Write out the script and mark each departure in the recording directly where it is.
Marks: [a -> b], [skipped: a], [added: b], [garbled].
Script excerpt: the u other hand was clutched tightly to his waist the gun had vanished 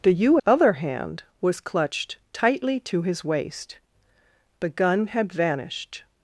the u other hand was clutched tightly to his waist the gun had vanished